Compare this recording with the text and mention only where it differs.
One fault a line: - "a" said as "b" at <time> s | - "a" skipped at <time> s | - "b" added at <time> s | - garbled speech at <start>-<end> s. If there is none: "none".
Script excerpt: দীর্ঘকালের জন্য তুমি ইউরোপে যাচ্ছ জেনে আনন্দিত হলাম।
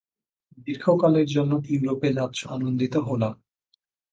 - "তুমি" skipped at 1.5 s
- "জেনে" skipped at 2.4 s